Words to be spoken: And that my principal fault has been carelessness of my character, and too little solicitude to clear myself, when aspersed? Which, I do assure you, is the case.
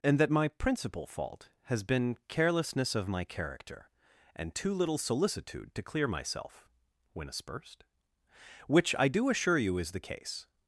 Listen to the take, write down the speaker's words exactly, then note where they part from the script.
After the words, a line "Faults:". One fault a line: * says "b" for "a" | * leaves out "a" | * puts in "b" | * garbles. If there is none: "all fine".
And that my principal fault has been carelessness of my character, and too little solicitude to clear myself, when aspersed? Which, I do assure you, is the case.
Faults:
all fine